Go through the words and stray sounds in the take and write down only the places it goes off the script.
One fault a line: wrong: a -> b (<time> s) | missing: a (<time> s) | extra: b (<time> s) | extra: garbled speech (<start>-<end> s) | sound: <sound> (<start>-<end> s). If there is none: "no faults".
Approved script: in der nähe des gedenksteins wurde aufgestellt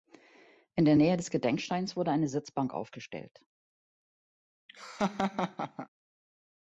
extra: eine sitzbank (2.1 s)
sound: laugh (4.7-5.9 s)